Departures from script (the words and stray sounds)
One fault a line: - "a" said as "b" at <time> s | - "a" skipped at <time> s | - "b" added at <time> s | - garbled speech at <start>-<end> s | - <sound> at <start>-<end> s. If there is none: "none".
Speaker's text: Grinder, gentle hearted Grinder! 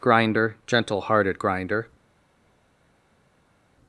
none